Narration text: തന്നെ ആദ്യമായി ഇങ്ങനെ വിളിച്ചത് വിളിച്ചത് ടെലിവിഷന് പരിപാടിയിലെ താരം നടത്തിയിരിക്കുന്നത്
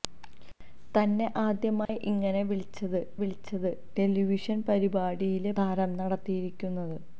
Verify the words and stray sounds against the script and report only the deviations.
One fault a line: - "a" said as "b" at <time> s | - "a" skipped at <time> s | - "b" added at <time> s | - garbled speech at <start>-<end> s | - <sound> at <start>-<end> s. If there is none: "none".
- dropout at 1.9-1.9 s